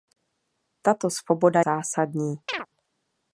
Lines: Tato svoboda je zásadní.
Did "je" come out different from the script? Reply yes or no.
yes